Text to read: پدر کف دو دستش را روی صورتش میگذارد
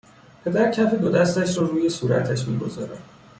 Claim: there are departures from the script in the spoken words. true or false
false